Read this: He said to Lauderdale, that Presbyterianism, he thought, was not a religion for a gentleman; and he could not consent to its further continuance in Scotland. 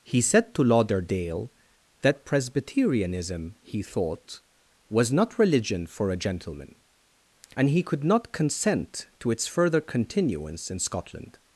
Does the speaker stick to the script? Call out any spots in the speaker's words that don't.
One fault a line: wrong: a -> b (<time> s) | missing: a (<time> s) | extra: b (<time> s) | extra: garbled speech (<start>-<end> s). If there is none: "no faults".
missing: a (5.4 s)